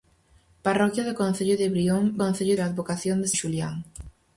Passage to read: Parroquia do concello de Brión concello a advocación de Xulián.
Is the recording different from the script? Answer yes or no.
no